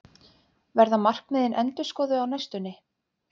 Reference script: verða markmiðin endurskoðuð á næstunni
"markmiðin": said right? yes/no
yes